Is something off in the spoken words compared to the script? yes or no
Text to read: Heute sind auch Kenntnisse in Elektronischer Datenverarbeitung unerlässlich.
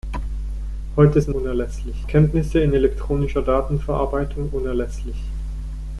yes